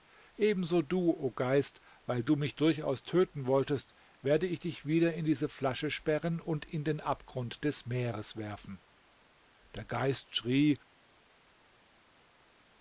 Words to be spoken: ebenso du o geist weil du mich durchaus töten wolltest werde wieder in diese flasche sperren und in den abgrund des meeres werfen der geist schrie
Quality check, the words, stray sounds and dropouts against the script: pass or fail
fail